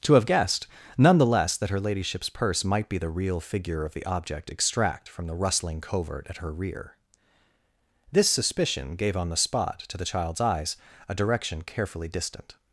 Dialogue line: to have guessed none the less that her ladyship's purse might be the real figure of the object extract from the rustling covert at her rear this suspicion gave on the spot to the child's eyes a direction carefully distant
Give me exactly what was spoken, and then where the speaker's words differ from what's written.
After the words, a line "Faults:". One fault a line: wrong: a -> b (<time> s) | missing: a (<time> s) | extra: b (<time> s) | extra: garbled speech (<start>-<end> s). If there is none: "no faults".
to have guessed none the less that her ladyship's purse might be the real figure of the object extract from the rustling covert at her rear this suspicion gave on the spot to the child's eyes a direction carefully distant
Faults:
no faults